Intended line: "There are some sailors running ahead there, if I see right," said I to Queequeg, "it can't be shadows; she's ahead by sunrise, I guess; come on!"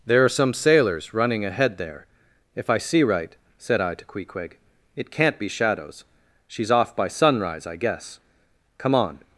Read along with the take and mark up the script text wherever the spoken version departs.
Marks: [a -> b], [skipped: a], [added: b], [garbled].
"There are some sailors running ahead there, if I see right," said I to Queequeg, "it can't be shadows; she's [ahead -> off] by sunrise, I guess; come on!"